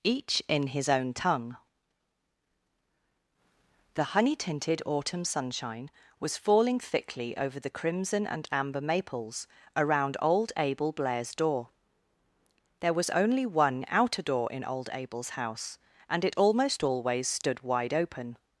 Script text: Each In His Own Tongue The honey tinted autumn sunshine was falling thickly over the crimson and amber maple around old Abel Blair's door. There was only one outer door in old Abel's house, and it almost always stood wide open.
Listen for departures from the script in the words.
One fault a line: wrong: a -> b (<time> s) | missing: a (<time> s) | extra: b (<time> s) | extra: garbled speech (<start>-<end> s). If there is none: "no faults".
wrong: maple -> maples (8.8 s)